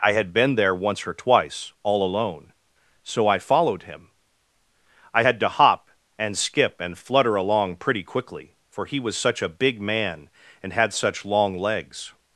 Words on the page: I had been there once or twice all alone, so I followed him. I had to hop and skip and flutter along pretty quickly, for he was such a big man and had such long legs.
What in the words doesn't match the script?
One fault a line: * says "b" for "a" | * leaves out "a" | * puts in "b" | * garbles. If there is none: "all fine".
all fine